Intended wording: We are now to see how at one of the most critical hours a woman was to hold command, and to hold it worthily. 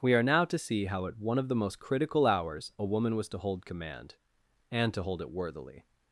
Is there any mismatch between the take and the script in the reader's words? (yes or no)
no